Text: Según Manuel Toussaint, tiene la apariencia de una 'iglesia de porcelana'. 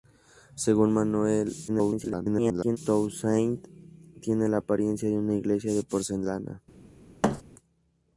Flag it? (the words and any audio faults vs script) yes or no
yes